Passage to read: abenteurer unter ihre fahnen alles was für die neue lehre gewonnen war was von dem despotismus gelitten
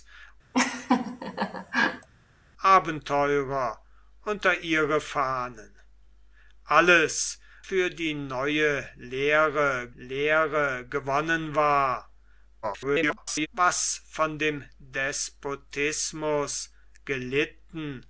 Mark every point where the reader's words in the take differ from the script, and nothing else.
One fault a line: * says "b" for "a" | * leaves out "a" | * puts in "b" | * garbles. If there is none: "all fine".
* leaves out "was"
* puts in "lehre"
* garbles